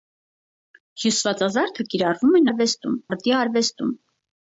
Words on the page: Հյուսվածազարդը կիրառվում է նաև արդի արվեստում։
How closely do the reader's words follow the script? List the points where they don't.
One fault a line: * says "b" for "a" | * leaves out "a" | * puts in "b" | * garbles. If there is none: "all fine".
* says "արվեստում" for "նաև"